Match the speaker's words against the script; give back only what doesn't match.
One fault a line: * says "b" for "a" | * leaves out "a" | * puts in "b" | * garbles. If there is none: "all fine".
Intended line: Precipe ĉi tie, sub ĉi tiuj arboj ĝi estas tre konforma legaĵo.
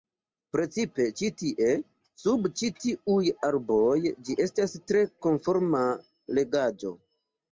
all fine